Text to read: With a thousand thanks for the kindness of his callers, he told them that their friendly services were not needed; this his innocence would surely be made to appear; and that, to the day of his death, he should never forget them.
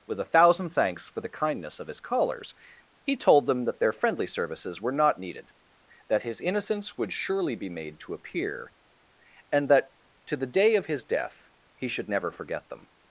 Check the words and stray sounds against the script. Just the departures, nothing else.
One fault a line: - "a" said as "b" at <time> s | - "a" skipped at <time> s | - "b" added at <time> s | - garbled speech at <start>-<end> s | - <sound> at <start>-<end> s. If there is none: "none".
- "this" said as "that" at 6.1 s